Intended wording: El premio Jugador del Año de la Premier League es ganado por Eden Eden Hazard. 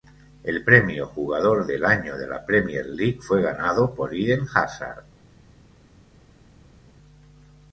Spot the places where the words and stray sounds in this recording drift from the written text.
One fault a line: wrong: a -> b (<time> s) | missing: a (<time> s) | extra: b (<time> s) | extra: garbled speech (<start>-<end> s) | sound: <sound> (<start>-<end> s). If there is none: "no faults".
wrong: es -> fue (3.2 s)
missing: Eden (4.5 s)